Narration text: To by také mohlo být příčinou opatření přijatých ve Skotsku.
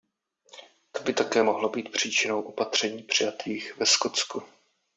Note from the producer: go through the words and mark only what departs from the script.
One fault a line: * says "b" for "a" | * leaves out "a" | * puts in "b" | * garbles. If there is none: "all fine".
all fine